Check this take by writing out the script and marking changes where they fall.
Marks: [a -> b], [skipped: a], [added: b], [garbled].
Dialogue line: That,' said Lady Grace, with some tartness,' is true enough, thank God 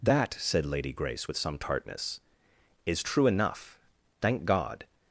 That,' said Lady Grace, with some tartness,' is true enough, thank God